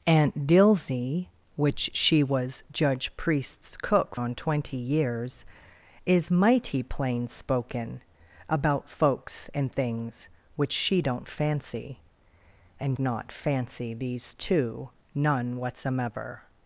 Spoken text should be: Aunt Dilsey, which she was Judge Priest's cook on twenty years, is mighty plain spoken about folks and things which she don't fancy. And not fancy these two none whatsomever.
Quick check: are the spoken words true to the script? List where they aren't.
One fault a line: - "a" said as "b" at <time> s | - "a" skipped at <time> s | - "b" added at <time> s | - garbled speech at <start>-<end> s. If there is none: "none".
none